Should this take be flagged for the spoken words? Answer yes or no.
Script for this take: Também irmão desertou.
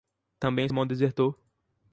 no